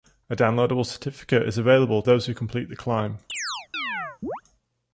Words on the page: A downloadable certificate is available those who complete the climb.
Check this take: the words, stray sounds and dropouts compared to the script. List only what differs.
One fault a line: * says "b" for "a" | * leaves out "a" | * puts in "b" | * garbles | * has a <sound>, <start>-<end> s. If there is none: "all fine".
* has a chirp, 3.3-4.4 s